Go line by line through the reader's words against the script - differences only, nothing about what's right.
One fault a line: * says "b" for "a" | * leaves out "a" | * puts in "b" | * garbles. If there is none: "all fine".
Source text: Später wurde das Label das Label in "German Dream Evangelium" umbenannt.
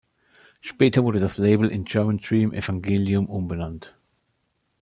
* leaves out "das Label"